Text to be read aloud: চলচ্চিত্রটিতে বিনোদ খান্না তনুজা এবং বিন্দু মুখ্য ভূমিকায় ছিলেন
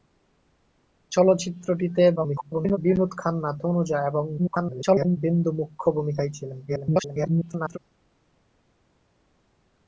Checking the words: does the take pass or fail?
fail